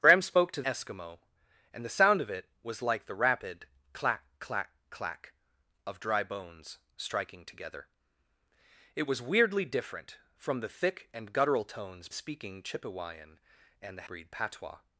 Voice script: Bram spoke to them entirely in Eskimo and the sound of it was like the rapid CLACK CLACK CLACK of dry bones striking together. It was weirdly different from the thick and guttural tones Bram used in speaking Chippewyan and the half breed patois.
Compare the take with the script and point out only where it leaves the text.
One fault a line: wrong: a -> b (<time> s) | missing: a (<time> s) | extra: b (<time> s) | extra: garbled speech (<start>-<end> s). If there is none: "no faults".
missing: them entirely in (0.6 s)
missing: Bram used in (12.1 s)
missing: half (14.1 s)